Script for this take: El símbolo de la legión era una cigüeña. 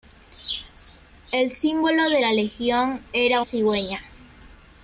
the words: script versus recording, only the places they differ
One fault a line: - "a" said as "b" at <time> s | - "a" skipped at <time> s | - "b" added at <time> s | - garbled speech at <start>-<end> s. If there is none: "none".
- "una" skipped at 3.4 s